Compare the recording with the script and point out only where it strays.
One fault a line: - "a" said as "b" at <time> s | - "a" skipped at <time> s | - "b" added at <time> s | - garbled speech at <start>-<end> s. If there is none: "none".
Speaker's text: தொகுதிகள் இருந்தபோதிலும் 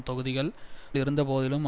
none